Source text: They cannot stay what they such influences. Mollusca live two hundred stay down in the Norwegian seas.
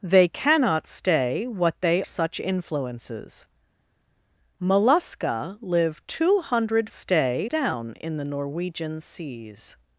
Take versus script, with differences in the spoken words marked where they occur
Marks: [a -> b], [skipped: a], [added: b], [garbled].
They cannot stay what they such influences. Mollusca live two hundred stay down in the Norwegian seas.